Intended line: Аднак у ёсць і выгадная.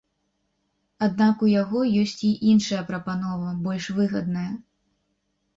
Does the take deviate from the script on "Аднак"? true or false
false